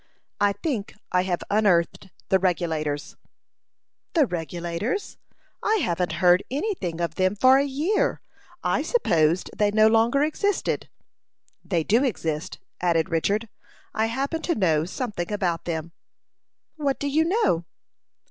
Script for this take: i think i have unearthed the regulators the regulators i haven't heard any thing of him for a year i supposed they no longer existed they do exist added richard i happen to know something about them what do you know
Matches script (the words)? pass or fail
fail